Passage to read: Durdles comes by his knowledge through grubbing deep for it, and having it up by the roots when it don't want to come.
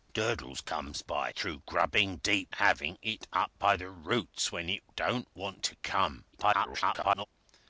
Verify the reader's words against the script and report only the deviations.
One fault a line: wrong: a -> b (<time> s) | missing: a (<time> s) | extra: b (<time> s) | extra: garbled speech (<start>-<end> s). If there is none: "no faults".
missing: his knowledge (1.3 s)
missing: for it and (2.5 s)
extra: garbled speech (6.3-7.3 s)